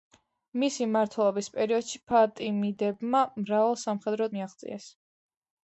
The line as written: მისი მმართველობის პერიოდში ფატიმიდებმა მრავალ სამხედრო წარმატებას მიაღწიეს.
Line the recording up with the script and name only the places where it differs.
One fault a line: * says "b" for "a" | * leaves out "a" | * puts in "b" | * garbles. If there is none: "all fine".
* leaves out "წარმატებას"